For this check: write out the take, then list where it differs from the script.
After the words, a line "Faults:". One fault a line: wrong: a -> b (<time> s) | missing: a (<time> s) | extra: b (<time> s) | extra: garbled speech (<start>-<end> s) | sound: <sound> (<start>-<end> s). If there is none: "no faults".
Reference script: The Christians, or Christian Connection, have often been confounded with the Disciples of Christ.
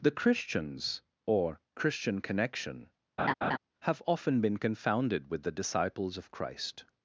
The Christians, or Christian Connection, have often been confounded with the Disciples of Christ.
Faults:
sound: laugh (3.2-3.6 s)